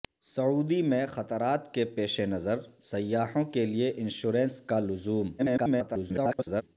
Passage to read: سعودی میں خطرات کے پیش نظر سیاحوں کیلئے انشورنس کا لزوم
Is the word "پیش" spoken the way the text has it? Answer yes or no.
yes